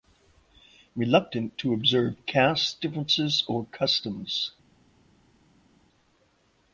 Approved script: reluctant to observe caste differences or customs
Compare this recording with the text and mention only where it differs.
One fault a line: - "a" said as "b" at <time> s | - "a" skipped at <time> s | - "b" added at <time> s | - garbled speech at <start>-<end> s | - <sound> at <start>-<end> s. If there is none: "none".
none